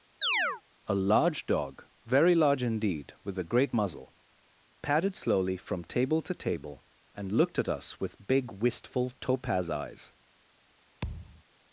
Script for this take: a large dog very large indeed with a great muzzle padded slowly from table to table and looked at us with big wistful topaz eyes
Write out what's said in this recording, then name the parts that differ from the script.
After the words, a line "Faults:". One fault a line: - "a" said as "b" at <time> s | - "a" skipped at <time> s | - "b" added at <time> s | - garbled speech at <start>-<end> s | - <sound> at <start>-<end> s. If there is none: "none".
a large dog very large indeed with a great muzzle padded slowly from table to table and looked at us with big wistful topaz eyes
Faults:
- chirp at 0.2-0.6 s
- thud at 11.0-11.4 s